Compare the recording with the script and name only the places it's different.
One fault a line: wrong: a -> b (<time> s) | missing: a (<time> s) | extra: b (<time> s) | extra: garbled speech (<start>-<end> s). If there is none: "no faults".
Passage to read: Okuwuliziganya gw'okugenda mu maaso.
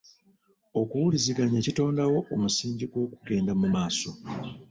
extra: kitondawo omusingi (1.6 s)